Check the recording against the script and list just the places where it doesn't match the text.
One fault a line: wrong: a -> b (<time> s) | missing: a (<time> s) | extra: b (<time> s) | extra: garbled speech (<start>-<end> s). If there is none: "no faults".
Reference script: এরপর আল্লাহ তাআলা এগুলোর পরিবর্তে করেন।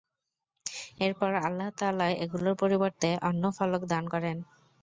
extra: অন্য ফলক দান (3.3 s)